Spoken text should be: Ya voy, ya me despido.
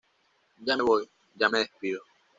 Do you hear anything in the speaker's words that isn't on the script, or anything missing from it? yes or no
no